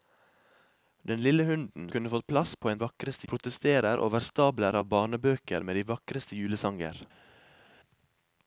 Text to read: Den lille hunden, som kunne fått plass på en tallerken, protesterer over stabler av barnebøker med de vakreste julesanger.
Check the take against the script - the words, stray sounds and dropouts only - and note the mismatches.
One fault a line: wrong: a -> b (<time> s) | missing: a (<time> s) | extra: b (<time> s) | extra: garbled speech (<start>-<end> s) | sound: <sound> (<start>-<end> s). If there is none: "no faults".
missing: som (1.9 s)
wrong: tallerken -> vakreste (2.8 s)